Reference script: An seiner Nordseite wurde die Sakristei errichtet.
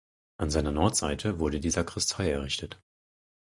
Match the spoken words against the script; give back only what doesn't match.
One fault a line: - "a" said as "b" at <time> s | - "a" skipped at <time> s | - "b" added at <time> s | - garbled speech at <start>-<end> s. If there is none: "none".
none